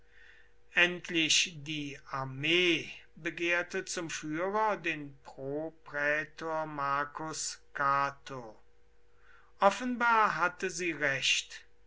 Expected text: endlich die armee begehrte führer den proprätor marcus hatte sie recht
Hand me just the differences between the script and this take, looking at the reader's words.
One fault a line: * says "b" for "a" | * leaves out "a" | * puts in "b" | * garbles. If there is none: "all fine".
* puts in "zum"
* puts in "cato offenbar"